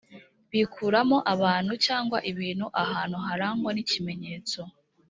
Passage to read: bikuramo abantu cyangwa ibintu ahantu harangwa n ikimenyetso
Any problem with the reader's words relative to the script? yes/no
no